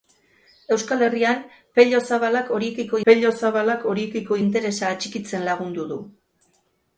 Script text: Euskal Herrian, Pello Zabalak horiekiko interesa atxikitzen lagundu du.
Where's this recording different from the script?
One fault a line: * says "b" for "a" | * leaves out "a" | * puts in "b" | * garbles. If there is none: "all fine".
* puts in "Pello Zabalak horiekiko"